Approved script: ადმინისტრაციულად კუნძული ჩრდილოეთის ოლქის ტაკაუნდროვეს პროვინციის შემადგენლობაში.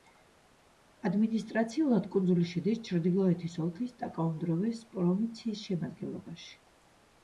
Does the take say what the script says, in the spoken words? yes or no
no